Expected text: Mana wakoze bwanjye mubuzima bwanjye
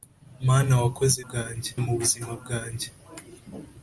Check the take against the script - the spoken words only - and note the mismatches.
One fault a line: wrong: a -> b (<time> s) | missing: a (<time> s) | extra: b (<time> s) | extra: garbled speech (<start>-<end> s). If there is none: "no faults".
no faults